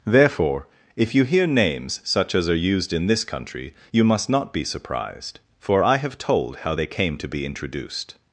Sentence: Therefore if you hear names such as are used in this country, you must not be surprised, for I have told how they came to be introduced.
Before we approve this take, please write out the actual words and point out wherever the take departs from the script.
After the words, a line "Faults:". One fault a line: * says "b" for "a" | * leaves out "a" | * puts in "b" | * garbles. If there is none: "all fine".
Therefore if you hear names such as are used in this country, you must not be surprised, for I have told how they came to be introduced.
Faults:
all fine